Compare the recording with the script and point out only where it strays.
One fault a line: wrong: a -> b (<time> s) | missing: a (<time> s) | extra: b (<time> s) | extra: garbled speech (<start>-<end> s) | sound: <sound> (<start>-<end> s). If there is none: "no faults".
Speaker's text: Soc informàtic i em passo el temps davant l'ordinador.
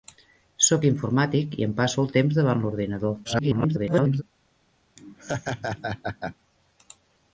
extra: garbled speech (3.2-4.2 s)
sound: laugh (5.0-6.4 s)